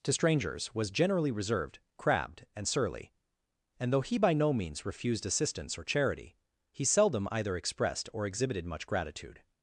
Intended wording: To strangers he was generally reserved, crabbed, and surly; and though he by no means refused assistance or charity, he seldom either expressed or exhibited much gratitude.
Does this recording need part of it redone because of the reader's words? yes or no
yes